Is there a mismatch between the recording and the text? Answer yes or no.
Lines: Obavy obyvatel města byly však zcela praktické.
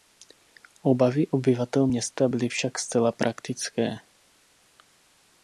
no